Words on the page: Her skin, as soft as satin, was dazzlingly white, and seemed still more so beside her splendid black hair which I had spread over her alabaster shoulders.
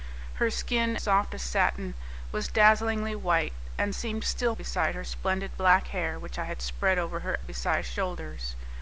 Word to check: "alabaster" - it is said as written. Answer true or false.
false